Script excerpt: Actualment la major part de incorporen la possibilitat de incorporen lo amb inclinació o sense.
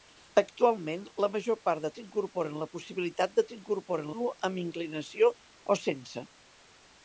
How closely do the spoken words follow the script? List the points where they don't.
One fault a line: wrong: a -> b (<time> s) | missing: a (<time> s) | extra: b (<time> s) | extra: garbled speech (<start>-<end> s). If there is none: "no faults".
no faults